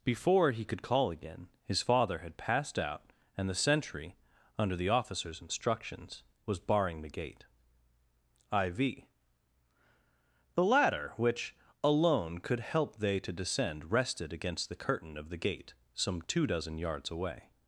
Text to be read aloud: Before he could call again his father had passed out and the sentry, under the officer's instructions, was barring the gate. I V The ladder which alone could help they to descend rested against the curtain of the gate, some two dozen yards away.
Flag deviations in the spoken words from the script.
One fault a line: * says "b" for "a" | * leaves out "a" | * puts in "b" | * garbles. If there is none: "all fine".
all fine